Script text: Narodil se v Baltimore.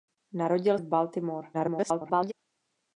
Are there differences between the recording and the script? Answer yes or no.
yes